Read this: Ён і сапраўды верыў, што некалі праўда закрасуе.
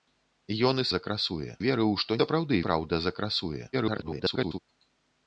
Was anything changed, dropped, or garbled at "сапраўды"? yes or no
yes